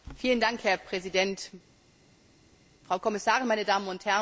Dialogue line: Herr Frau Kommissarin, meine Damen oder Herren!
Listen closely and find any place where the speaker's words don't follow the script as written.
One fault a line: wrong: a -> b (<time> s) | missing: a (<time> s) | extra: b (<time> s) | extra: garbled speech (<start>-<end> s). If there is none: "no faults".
extra: Präsident (0.8 s)
wrong: oder -> und (3.9 s)